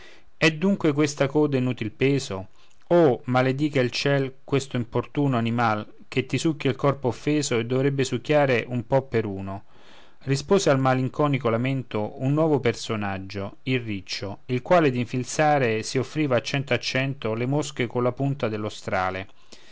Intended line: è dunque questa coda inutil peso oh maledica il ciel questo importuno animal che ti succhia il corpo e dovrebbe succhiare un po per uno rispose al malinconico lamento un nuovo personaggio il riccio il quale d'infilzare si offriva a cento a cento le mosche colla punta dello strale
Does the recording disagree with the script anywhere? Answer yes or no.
yes